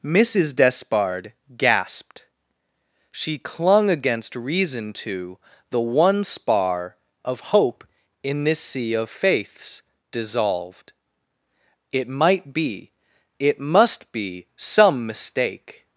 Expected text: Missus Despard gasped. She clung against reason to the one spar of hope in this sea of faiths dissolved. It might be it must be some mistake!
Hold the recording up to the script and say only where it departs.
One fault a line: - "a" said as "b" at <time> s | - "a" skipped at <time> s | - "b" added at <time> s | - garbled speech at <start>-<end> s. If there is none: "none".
none